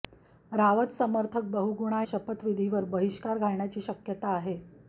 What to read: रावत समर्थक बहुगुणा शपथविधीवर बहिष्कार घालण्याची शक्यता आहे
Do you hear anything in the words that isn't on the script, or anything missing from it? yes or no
no